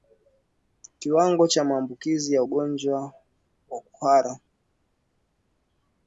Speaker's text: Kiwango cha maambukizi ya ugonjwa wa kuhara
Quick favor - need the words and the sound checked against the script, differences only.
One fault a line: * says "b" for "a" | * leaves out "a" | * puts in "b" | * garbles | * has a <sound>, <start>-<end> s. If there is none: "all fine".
all fine